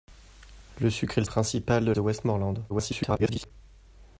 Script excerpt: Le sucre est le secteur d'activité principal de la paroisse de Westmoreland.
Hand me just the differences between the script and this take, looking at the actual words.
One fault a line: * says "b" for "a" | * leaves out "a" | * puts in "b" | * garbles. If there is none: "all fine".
* leaves out "secteur d'activité"
* leaves out "la paroisse"
* garbles